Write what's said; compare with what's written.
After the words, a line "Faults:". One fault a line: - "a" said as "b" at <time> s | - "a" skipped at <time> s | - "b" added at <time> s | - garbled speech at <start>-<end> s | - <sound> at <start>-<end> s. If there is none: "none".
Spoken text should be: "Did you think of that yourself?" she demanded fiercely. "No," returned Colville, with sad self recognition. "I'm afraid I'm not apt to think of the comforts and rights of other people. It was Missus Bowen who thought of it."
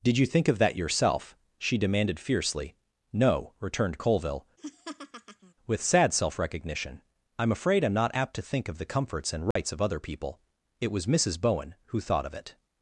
"Did you think of that yourself?" she demanded fiercely. "No," returned Colville, with sad self recognition. "I'm afraid I'm not apt to think of the comforts and rights of other people. It was Missus Bowen who thought of it."
Faults:
- laugh at 4.6-5.5 s
- dropout at 9.5-9.6 s